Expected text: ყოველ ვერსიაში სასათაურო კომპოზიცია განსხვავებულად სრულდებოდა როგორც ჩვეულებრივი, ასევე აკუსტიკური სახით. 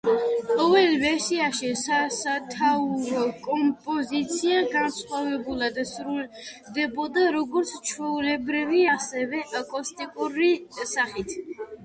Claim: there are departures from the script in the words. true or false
false